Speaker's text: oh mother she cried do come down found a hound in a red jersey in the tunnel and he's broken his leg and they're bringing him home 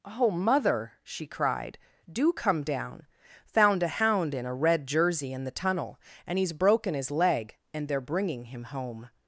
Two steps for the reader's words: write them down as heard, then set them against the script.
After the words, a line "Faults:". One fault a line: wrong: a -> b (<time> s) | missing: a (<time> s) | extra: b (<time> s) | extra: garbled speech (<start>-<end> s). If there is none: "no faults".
oh mother she cried do come down found a hound in a red jersey in the tunnel and he's broken his leg and they're bringing him home
Faults:
no faults